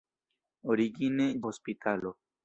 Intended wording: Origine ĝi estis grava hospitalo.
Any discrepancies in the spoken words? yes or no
yes